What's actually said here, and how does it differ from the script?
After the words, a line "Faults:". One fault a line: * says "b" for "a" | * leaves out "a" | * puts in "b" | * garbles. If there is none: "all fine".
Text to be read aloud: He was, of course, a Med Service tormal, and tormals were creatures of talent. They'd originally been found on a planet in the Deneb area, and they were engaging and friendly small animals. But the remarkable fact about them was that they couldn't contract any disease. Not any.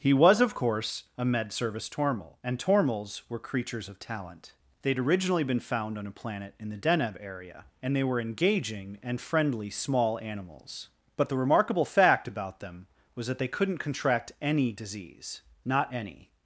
He was, of course, a Med Service tormal, and tormals were creatures of talent. They'd originally been found on a planet in the Deneb area, and they were engaging and friendly small animals. But the remarkable fact about them was that they couldn't contract any disease. Not any.
Faults:
all fine